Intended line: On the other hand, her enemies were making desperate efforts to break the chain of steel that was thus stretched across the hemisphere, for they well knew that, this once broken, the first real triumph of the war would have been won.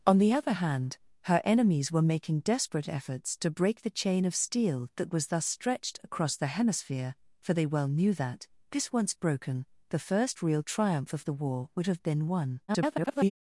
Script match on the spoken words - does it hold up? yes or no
no